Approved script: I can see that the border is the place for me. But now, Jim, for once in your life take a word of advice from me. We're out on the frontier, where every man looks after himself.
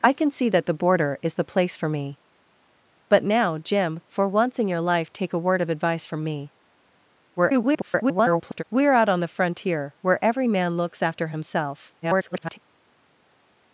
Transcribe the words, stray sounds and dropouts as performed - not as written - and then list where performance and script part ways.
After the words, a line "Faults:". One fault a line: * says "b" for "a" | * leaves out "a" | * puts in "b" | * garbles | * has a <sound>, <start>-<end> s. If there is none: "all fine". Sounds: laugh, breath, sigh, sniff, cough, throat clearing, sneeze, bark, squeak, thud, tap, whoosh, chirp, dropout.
I can see that the border is the place for me. But now, Jim, for once in your life take a word of advice from me. [garbled] We're out on the frontier, where every man looks after himself. [garbled]
Faults:
* garbles
* garbles